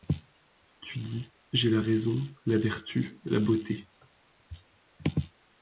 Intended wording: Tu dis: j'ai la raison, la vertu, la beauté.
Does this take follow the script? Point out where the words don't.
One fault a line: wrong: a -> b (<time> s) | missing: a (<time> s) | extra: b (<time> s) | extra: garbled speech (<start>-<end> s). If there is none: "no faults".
no faults